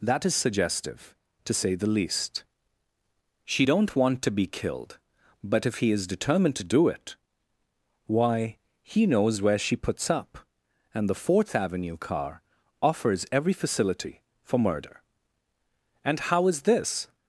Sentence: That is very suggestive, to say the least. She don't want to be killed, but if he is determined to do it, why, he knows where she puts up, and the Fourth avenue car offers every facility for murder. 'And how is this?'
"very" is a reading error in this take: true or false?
true